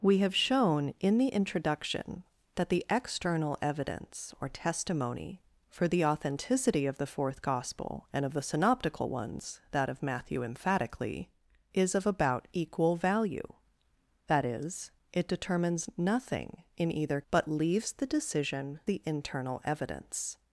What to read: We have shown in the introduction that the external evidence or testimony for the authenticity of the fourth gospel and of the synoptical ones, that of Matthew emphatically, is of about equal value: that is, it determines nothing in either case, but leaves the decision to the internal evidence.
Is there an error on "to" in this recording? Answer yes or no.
yes